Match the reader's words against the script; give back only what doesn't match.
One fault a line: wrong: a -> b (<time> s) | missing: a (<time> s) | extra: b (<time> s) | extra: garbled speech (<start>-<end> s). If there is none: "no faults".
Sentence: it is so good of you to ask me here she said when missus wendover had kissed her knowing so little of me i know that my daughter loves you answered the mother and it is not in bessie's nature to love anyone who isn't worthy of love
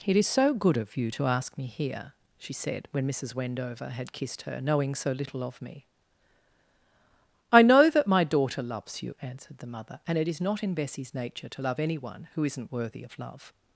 no faults